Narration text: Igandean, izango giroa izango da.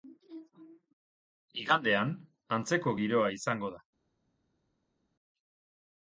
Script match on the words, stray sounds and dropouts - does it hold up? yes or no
no